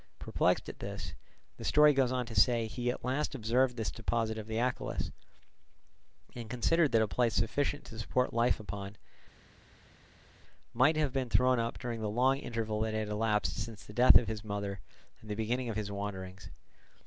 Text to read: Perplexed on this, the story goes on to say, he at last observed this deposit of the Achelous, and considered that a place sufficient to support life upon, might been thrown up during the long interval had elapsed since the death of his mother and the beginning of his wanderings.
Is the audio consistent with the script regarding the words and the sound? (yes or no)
no